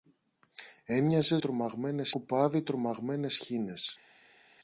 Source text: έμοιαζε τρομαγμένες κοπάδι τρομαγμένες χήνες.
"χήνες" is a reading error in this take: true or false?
false